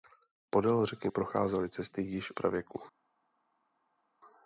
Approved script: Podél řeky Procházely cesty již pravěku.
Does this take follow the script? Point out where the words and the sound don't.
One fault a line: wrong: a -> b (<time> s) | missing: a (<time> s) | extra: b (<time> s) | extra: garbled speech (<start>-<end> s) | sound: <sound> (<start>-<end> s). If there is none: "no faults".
no faults